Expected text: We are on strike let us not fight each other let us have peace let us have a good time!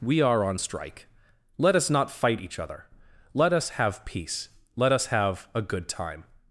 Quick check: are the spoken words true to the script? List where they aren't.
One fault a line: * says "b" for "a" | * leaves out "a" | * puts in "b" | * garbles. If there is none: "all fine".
all fine